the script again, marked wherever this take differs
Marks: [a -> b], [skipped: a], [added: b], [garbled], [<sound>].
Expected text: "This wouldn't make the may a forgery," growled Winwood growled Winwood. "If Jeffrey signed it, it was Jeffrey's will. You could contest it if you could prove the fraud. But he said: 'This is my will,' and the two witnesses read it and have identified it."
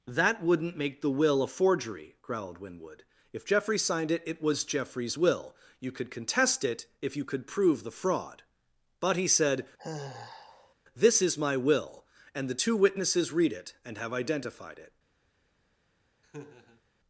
["This -> That] wouldn't make the [may -> will] a forgery," growled Winwood [skipped: growled Winwood.] "If Jeffrey signed it, it was Jeffrey's will. You could contest it if you could prove the fraud. But he said: [sigh] 'This is my will,' and the two witnesses read it and have identified it." [laugh]